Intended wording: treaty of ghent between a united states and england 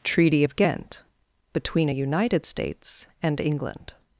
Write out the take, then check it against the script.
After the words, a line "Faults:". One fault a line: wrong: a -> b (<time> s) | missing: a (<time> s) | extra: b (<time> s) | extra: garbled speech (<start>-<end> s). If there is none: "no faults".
treaty of ghent between a united states and england
Faults:
no faults